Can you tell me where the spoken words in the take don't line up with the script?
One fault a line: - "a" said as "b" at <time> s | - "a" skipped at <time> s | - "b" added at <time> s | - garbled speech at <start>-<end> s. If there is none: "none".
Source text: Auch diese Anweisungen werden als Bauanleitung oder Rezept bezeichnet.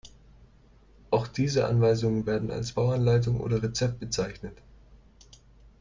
none